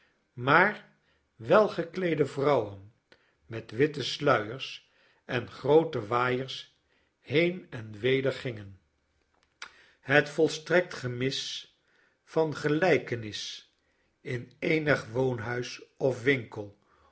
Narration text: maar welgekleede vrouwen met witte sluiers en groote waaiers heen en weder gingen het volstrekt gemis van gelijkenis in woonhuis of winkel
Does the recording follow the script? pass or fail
fail